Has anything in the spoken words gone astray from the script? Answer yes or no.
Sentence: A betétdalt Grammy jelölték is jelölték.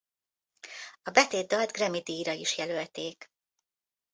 yes